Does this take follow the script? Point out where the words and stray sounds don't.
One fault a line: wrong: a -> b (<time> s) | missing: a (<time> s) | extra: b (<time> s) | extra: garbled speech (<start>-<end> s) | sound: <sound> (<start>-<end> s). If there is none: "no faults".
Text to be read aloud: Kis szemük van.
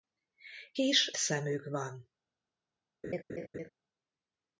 sound: laugh (3.0-3.7 s)